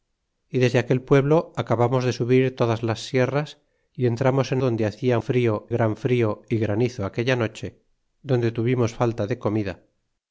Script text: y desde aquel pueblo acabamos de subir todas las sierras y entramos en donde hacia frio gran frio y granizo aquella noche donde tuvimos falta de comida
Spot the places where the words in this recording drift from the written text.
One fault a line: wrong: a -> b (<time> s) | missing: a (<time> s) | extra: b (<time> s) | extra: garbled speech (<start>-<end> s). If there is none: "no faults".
no faults